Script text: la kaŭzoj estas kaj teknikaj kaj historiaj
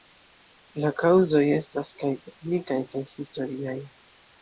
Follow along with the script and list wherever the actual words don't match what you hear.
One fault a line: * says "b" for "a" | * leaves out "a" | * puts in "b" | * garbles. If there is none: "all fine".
all fine